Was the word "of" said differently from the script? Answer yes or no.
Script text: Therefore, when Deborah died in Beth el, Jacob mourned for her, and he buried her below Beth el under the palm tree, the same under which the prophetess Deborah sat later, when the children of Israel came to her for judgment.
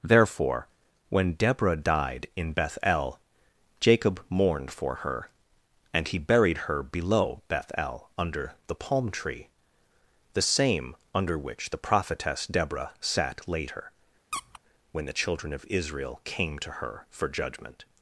no